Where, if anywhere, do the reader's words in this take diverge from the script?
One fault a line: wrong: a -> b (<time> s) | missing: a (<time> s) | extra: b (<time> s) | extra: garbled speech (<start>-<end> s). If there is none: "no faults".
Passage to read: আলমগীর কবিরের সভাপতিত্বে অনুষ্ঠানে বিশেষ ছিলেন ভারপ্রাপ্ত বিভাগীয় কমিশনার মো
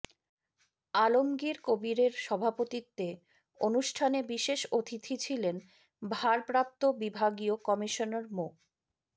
extra: অতিথি (4.7 s)